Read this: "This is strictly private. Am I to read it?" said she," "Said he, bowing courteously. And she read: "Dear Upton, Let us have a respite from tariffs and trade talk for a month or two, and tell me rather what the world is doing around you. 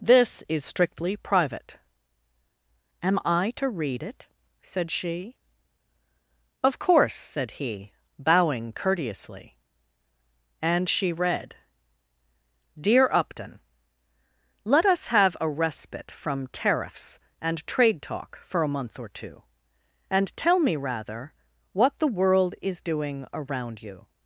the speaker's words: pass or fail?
fail